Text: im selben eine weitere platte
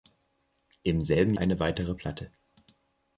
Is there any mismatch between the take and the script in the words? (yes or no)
no